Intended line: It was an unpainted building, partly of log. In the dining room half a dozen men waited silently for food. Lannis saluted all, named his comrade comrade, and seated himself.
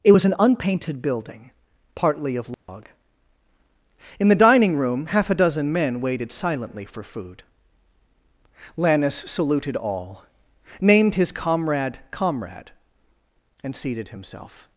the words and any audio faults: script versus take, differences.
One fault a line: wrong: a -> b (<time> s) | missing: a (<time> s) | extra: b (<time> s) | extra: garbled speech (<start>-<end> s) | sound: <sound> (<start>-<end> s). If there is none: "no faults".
sound: dropout (2.5-2.7 s)